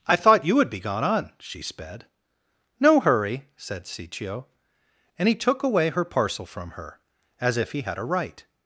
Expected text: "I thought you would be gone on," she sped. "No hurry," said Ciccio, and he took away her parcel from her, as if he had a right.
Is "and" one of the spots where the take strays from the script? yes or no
no